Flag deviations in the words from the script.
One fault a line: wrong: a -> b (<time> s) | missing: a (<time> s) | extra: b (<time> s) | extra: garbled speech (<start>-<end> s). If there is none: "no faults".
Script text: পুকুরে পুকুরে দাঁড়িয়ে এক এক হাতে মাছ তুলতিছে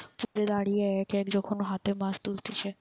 missing: পুকুরে (0.5 s)
extra: যখন (1.4 s)